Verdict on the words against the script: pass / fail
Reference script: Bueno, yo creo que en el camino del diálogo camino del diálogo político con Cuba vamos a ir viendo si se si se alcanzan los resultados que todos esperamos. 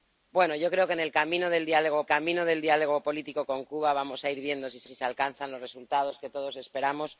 pass